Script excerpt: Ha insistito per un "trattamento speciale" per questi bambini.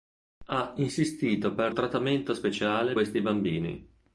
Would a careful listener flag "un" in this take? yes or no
yes